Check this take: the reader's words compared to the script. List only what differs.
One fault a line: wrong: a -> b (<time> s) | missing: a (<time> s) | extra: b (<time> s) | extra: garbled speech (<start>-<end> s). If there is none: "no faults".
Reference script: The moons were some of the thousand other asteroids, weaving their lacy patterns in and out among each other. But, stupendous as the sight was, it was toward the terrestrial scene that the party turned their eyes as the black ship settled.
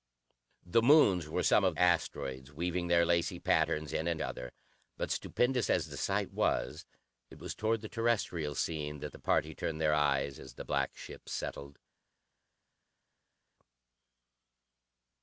missing: the thousand other (1.8 s)
missing: out among each (4.2 s)